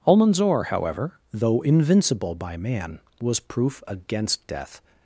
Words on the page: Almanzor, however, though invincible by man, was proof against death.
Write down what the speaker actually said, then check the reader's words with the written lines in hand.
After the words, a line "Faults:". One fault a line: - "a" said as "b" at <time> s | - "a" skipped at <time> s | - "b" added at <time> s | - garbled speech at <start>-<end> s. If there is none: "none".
Almanzor, however, though invincible by man, was proof against death.
Faults:
none